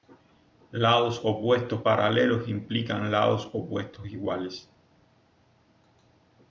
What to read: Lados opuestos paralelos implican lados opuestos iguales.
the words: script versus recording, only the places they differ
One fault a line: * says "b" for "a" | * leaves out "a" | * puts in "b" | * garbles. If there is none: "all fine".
all fine